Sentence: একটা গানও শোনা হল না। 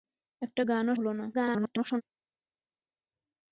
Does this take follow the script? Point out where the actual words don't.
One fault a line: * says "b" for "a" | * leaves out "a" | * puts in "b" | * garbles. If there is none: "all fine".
* leaves out "শোনা"
* garbles